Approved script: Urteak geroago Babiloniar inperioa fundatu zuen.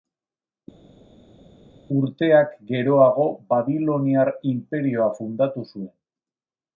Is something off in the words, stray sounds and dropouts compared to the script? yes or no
no